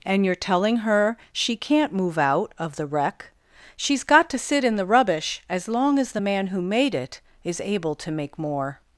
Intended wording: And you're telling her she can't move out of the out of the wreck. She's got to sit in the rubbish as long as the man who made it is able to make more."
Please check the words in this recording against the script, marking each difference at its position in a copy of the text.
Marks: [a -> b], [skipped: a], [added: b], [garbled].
And you're telling her she can't move out of the [skipped: out of the] wreck. She's got to sit in the rubbish as long as the man who made it is able to make more."